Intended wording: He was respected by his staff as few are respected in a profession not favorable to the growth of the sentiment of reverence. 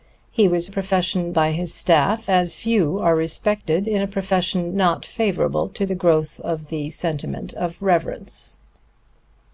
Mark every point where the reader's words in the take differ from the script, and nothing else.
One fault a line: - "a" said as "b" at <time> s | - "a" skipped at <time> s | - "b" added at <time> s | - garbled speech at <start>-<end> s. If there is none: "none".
- "respected" said as "profession" at 0.7 s